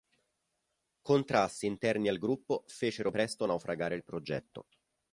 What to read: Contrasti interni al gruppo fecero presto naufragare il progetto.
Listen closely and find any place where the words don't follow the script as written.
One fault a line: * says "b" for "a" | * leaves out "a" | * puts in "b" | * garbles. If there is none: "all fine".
all fine